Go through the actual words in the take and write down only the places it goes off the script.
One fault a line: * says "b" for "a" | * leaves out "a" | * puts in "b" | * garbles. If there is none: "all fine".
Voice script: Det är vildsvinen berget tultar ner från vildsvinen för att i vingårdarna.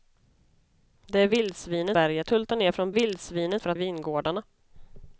all fine